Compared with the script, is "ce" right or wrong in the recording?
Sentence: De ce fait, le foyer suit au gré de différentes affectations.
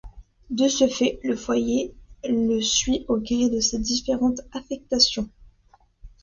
right